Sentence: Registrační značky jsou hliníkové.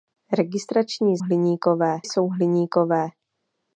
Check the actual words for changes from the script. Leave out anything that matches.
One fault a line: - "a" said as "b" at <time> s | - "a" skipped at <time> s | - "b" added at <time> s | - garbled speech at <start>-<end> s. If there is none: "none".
- "značky" said as "hliníkové" at 1.2 s